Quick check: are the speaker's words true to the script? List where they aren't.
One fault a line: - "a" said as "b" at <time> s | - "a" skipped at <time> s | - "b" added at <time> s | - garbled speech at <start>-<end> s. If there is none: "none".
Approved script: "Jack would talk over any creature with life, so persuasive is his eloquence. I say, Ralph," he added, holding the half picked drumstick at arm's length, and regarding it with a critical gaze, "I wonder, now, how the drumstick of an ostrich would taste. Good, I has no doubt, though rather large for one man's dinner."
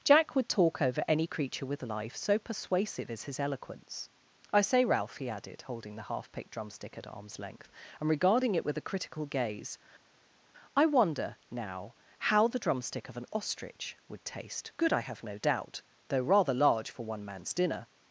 - "has" said as "have" at 15.0 s